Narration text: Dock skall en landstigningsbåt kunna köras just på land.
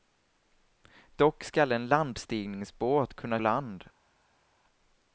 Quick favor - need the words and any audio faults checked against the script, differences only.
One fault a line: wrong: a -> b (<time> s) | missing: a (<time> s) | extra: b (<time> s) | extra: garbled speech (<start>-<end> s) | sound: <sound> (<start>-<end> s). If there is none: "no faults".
missing: köras just på (3.4 s)